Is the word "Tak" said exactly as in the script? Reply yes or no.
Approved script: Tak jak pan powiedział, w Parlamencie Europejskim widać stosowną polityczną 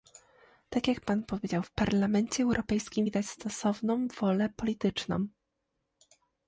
yes